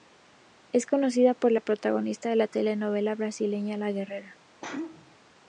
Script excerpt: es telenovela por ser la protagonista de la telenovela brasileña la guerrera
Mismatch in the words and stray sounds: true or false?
true